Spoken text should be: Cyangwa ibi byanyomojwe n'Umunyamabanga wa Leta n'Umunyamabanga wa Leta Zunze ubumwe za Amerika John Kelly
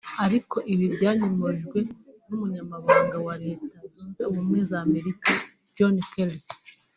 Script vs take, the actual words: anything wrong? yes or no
yes